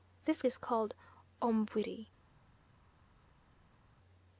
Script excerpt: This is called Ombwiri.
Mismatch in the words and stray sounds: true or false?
false